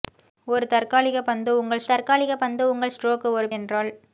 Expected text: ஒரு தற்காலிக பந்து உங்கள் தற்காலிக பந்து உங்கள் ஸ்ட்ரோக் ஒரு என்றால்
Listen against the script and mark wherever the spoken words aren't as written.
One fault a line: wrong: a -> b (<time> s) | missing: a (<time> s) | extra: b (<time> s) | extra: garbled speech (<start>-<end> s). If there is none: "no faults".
no faults